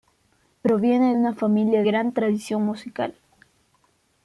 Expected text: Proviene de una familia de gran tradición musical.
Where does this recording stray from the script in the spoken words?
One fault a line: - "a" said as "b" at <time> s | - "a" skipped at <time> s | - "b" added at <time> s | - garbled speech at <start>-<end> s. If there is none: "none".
- "de" skipped at 1.1 s
- "de" skipped at 1.8 s